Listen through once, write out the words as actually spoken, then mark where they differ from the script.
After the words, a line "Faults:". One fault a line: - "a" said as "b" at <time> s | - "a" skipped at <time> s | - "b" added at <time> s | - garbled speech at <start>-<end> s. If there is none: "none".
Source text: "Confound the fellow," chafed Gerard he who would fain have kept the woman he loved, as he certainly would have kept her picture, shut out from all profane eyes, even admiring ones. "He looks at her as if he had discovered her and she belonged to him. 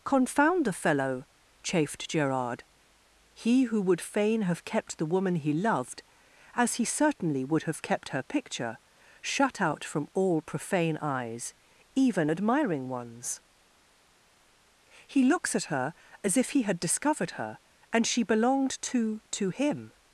"Confound the fellow," chafed Gerard he who would fain have kept the woman he loved, as he certainly would have kept her picture, shut out from all profane eyes, even admiring ones. "He looks at her as if he had discovered her and she belonged to to him.
Faults:
- "to" added at 19.3 s